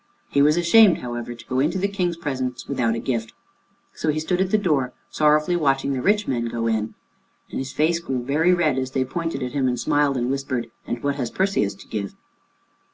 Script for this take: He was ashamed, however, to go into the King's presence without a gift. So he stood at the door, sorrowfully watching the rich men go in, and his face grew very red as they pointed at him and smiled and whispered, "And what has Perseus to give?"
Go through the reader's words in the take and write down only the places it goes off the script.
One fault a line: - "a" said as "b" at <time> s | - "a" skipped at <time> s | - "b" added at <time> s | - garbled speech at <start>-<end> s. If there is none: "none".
none